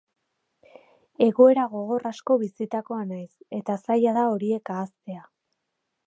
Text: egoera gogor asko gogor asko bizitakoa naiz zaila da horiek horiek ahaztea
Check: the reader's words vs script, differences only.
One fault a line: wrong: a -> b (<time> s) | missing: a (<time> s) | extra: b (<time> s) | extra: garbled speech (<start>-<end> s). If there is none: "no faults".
missing: gogor asko (2.4 s)
extra: eta (3.6 s)
missing: horiek (4.7 s)